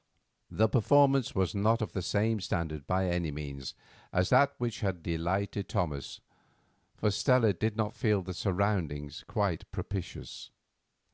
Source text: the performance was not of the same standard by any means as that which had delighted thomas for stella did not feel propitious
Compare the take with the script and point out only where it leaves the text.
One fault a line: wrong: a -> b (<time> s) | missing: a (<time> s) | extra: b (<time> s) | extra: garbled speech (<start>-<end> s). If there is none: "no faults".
extra: the surroundings quite (8.2 s)